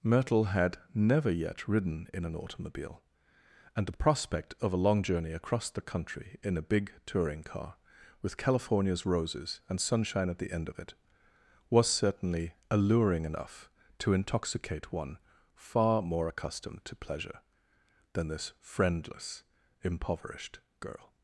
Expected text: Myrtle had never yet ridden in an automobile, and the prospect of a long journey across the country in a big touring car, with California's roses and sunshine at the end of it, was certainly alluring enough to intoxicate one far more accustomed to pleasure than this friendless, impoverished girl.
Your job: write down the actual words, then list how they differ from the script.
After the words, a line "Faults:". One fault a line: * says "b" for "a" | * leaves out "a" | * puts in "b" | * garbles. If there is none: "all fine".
Myrtle had never yet ridden in an automobile, and the prospect of a long journey across the country in a big touring car, with California's roses and sunshine at the end of it, was certainly alluring enough to intoxicate one far more accustomed to pleasure than this friendless, impoverished girl.
Faults:
all fine